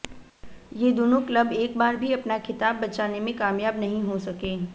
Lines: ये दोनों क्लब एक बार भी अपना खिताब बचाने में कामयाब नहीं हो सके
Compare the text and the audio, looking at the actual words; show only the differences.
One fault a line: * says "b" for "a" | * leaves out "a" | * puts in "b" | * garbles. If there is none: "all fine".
all fine